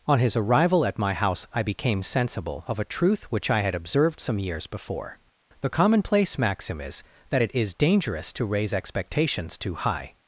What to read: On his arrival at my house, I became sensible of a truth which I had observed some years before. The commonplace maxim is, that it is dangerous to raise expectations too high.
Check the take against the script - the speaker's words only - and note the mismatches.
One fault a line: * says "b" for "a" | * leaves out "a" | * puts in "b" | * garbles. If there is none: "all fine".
all fine